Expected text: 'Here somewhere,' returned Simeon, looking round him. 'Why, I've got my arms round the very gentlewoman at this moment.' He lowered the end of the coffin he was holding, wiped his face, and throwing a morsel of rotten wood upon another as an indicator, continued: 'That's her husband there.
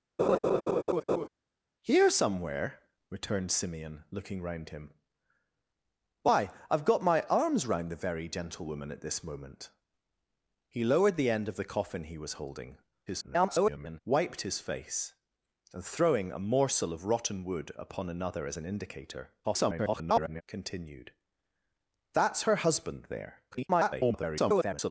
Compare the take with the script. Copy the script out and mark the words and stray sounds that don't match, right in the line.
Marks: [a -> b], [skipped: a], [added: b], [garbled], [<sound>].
[laugh] 'Here somewhere,' returned Simeon, looking round him. 'Why, I've got my arms round the very gentlewoman at this moment.' He lowered the end of the coffin he was holding, [garbled] wiped his face, and throwing a morsel of rotten wood upon another as an indicator, [garbled] continued: 'That's her husband there. [garbled]